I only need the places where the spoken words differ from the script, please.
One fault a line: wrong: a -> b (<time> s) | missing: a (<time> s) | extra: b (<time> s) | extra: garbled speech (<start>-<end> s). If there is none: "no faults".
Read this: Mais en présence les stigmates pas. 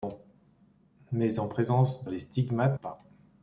no faults